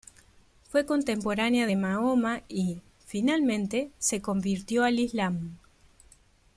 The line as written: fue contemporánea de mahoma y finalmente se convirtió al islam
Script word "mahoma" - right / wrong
right